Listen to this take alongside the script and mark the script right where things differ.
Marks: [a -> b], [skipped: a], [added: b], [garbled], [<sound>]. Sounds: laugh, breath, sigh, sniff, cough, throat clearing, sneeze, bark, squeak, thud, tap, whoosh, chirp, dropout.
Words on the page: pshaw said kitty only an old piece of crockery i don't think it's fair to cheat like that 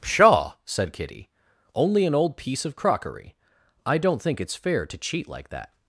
pshaw said kitty only an old piece of crockery i don't think it's fair to cheat like that